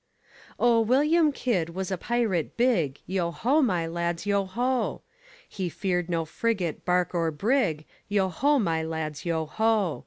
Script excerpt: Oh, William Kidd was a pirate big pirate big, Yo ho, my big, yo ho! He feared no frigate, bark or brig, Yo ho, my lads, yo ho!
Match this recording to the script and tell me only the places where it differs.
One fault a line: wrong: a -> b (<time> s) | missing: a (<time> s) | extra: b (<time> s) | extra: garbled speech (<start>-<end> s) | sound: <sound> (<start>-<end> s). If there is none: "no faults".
missing: pirate big (3.0 s)
wrong: big -> lads (3.8 s)